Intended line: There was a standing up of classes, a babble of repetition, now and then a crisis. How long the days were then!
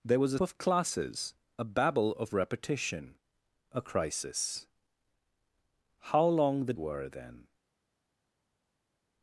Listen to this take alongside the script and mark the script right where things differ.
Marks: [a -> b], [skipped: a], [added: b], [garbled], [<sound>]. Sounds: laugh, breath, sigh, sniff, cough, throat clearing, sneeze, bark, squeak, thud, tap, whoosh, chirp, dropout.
There was a [skipped: standing up] of classes, a babble of repetition, [skipped: now and then] a crisis. How long the [skipped: days] were then!